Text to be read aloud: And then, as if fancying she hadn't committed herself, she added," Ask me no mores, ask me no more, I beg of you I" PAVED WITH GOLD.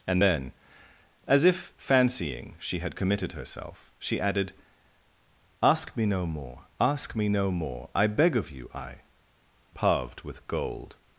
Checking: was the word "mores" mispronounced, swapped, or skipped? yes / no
yes